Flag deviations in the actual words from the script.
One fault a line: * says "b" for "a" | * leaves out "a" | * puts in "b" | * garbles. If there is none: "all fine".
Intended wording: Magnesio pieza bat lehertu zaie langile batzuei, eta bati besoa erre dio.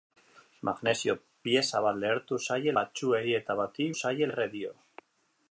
* leaves out "langile"
* says "zaie" for "besoa"